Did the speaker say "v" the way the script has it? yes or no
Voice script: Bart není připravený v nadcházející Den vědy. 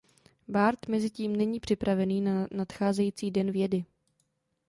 no